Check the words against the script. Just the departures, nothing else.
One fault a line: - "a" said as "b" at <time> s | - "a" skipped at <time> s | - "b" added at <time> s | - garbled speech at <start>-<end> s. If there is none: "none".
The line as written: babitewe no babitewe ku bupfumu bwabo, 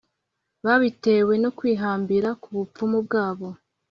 - "babitewe" said as "kwihambira" at 1.6 s